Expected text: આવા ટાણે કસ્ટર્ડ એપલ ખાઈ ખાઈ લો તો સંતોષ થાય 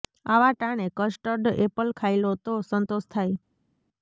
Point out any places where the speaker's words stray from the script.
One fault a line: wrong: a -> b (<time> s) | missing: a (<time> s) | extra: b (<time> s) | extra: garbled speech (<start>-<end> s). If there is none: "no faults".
missing: ખાઈ (2.2 s)